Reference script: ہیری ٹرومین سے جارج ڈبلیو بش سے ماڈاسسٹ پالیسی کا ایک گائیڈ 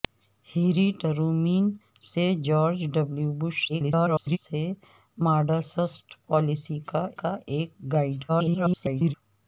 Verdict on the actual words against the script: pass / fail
fail